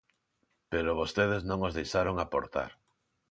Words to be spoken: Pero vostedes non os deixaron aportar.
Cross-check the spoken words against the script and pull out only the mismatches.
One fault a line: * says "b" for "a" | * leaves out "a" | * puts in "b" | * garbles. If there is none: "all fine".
all fine